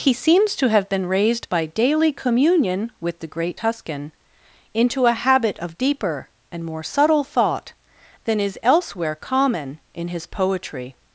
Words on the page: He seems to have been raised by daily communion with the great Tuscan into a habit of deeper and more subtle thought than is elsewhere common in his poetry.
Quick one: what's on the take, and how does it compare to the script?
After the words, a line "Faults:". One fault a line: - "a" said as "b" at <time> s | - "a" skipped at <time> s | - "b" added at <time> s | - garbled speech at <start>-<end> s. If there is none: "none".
He seems to have been raised by daily communion with the great Tuscan into a habit of deeper and more subtle thought than is elsewhere common in his poetry.
Faults:
none